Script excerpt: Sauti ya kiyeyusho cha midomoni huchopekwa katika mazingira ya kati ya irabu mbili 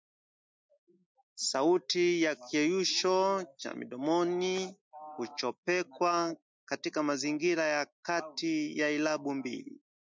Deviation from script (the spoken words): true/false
false